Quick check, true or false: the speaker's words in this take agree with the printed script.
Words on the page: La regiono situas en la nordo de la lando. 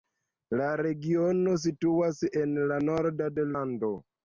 false